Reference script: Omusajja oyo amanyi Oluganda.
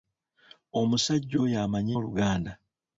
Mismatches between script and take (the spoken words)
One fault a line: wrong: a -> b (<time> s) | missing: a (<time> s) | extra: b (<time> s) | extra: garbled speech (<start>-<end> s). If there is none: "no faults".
no faults